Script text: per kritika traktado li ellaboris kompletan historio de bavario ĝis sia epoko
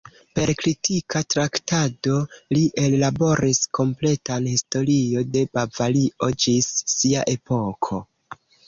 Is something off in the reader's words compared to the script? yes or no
no